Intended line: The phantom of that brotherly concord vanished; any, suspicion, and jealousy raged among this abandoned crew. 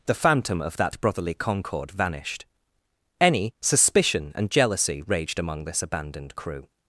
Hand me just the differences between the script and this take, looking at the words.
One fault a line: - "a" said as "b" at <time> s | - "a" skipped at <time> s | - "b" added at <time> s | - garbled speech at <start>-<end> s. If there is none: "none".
none